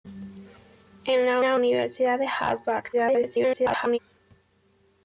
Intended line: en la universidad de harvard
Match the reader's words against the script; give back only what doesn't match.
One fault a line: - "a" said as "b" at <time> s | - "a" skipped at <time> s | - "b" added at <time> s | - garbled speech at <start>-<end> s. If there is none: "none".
- "la" added at 1.4 s
- garbled speech at 2.9-4.0 s